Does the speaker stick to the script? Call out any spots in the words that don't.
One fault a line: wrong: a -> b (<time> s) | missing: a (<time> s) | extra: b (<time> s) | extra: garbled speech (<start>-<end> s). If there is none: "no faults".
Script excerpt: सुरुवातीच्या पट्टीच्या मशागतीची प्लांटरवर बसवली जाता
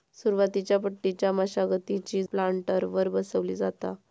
no faults